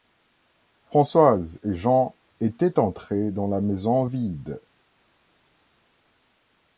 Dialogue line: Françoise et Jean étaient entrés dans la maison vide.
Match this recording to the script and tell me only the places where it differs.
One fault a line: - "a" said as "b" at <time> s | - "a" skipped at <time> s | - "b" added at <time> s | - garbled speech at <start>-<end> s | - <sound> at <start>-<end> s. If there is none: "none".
none